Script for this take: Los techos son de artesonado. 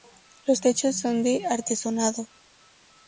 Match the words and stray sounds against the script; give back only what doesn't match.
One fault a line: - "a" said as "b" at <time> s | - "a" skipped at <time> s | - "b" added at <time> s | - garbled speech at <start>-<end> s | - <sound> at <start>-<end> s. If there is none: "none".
none